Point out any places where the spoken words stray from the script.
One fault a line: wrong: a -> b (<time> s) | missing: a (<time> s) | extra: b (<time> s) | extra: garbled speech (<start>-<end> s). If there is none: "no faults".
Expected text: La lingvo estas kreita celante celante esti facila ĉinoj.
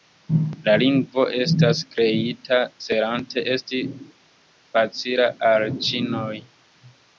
missing: celante (3.4 s)
extra: al (5.5 s)